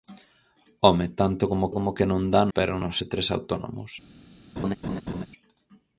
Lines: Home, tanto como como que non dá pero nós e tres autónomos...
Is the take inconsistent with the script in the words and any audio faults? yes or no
yes